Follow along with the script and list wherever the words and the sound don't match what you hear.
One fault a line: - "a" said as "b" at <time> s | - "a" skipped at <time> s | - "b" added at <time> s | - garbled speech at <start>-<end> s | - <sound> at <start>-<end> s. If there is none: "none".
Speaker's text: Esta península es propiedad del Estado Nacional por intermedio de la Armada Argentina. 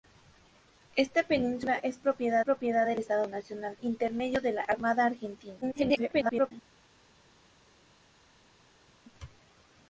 - "propiedad" added at 2.4 s
- "por" skipped at 3.8 s
- garbled speech at 5.6-6.5 s